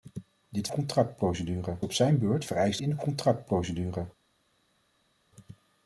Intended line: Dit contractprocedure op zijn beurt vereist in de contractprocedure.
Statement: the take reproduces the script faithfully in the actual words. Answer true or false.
true